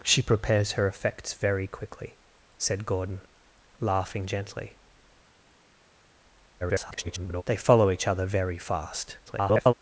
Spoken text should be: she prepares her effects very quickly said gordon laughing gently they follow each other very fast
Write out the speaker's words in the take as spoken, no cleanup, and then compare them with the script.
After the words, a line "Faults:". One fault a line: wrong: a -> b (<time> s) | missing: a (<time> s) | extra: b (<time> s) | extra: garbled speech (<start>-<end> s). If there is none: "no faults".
she prepares her effects very quickly said gordon laughing gently [garbled] they follow each other very fast [garbled]
Faults:
extra: garbled speech (6.6-7.4 s)
extra: garbled speech (9.3-9.7 s)